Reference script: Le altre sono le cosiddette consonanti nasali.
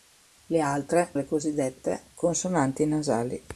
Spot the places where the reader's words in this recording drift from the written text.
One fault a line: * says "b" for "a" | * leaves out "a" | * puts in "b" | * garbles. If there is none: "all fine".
* leaves out "sono"